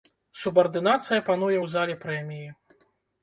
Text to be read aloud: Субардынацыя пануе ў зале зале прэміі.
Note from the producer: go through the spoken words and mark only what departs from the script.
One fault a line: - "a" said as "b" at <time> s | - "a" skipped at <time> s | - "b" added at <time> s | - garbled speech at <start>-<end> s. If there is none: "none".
- "зале" skipped at 2.0 s